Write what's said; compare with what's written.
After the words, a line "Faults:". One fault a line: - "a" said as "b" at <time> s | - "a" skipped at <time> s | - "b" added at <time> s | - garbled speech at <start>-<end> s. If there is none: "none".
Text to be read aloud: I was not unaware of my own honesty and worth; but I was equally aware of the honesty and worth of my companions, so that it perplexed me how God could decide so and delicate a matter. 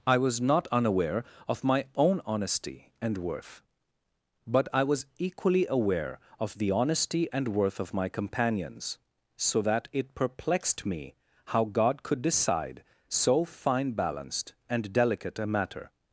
I was not unaware of my own honesty and worth; but I was equally aware of the honesty and worth of my companions, so that it perplexed me how God could decide so fine balanced and delicate a matter.
Faults:
- "fine balanced" added at 13.4 s